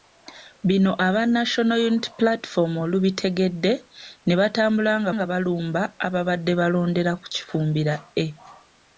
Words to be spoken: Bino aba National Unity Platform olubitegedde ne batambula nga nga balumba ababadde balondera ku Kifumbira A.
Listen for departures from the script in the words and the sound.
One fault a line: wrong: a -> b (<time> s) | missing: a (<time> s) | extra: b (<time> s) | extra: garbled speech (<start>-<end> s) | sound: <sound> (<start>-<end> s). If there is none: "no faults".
no faults